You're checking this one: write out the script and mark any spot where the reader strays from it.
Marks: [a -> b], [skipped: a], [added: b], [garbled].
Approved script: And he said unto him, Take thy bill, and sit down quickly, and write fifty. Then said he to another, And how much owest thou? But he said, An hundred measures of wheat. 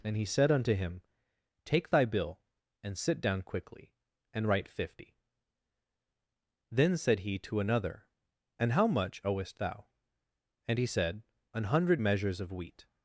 And he said unto him, Take thy bill, and sit down quickly, and write fifty. Then said he to another, And how much owest thou? [But -> And] he said, An hundred measures of wheat.